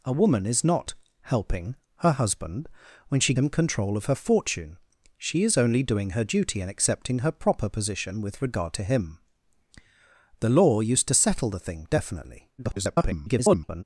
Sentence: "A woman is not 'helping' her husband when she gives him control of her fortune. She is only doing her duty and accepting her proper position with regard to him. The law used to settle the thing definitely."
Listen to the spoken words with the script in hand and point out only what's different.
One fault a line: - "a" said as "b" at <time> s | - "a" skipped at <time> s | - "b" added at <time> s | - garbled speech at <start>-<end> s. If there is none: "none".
- "gives" skipped at 3.3 s
- garbled speech at 12.6-13.8 s